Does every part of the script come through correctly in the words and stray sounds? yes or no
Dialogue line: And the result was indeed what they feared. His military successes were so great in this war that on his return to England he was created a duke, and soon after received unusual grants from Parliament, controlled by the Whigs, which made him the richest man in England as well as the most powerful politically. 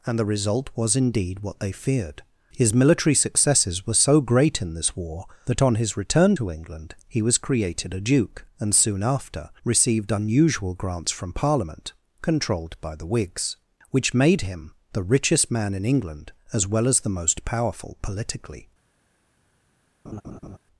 no